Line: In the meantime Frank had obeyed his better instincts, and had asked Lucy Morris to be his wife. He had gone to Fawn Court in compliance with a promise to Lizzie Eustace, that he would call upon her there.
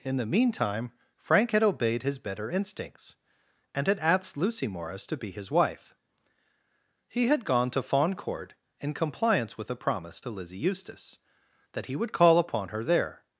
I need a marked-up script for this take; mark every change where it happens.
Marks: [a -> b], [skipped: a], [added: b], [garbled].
In the meantime Frank had obeyed his better instincts, and had asked Lucy Morris to be his wife. He had gone to Fawn Court in compliance with a promise to Lizzie Eustace, that he would call upon her there.